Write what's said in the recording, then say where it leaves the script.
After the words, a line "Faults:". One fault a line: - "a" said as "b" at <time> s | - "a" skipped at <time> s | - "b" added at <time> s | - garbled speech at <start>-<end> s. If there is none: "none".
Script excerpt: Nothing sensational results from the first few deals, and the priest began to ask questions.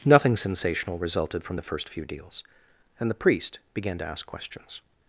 Nothing sensational resulted from the first few deals, and the priest began to ask questions.
Faults:
- "results" said as "resulted" at 1.0 s